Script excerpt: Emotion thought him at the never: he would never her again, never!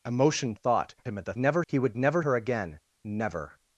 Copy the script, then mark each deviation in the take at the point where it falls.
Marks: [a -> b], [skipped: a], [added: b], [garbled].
Emotion thought him at the never: he would never her again, never!